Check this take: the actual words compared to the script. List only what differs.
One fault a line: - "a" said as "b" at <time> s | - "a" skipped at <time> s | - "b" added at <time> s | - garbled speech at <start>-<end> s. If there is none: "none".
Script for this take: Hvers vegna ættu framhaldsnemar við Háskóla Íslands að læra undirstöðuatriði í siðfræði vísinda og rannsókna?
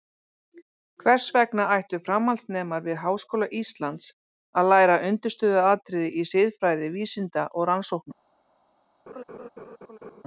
none